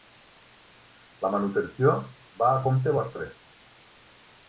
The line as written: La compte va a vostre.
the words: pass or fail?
fail